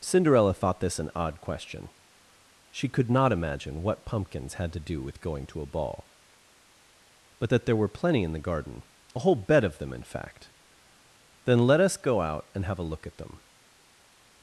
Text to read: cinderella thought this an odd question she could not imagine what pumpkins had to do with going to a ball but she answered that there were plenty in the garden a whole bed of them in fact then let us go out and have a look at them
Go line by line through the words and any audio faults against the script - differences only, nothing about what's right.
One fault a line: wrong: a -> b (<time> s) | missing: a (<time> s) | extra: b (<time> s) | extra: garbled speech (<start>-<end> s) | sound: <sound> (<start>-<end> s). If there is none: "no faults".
missing: she answered (7.5 s)